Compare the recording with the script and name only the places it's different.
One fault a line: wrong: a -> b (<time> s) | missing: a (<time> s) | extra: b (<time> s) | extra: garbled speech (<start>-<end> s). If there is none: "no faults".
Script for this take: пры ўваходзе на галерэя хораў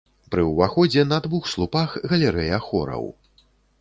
extra: двух слупах (1.3 s)